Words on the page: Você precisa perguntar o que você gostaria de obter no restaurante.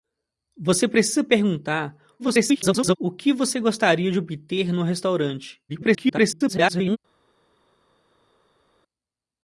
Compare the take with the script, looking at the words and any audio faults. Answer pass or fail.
fail